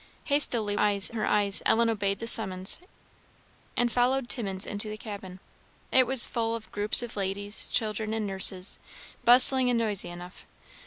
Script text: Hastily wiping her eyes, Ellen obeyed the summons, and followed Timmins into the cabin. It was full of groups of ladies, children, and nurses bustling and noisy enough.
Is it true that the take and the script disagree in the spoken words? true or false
true